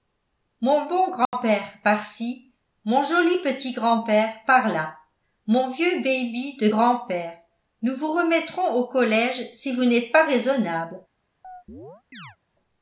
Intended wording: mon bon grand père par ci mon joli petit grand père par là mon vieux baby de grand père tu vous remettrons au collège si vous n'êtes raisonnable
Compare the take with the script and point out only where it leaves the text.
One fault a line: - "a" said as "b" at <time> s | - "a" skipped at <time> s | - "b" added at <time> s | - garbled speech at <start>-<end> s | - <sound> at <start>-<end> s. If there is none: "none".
- dropout at 1.3-1.3 s
- "tu" said as "nous" at 7.8 s
- "pas" added at 10.1 s
- chirp at 11.4-12.4 s